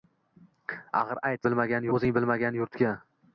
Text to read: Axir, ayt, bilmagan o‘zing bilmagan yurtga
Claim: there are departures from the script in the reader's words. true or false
false